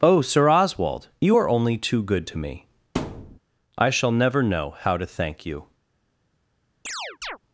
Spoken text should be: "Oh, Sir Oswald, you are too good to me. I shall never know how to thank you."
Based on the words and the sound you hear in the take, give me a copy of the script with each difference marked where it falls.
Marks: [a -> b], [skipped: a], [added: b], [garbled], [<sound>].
"Oh, Sir Oswald, you are [added: only] too good to me. [thud] I shall never know how to thank you." [chirp]